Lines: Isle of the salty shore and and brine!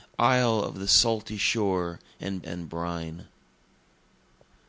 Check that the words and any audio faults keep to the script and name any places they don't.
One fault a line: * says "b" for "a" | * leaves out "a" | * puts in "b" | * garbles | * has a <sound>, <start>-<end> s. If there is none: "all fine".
all fine